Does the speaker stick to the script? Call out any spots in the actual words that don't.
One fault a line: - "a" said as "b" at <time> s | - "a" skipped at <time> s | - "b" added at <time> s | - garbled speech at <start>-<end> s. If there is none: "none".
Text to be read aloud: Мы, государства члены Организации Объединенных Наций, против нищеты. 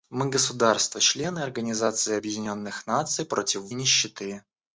none